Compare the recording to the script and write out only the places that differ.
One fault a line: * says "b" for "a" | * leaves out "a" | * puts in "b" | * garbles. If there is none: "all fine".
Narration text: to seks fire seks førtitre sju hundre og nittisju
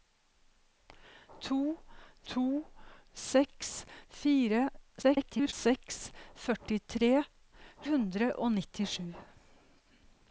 * puts in "to"
* garbles
* leaves out "sju"